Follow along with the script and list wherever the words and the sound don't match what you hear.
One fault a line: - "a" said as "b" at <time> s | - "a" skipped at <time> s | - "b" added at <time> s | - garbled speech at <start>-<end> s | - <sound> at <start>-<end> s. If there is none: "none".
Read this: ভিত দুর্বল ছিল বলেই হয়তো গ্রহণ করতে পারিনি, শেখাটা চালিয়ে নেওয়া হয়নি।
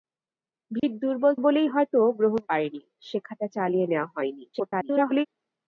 - dropout at 0.8-0.8 s
- "ছিল" skipped at 1.3 s
- "করতে" skipped at 2.4 s
- garbled speech at 4.5-5.3 s